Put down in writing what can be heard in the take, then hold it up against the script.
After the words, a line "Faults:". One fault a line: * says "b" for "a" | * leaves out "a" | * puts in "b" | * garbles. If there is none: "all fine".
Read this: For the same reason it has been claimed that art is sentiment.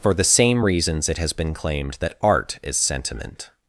For the same reasons it has been claimed that art is sentiment.
Faults:
* says "reasons" for "reason"